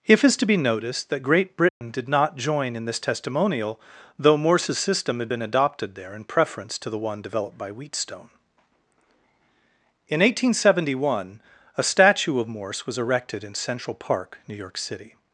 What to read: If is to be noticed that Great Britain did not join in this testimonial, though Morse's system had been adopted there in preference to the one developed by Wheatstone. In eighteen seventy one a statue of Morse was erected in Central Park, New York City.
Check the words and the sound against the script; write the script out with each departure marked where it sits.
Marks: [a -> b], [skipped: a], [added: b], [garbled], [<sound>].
If is to be noticed that Great Britain [dropout] did not join in this testimonial, though Morse's system had been adopted there in preference to the one developed by Wheatstone. In eighteen seventy one a statue of Morse was erected in Central Park, New York City.